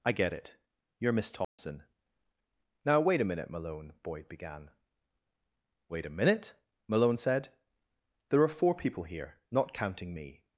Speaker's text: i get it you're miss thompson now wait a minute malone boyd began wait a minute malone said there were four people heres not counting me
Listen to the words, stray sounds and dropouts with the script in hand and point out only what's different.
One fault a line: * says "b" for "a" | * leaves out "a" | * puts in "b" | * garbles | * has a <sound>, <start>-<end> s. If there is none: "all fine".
* has a dropout, 1.4-1.6 s
* says "are" for "were"
* says "here" for "heres"